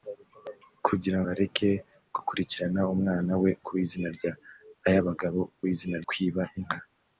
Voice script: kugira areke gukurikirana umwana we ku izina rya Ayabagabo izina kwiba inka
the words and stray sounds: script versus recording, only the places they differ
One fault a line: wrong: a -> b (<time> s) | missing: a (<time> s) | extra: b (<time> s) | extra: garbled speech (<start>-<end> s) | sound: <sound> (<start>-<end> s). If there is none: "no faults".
no faults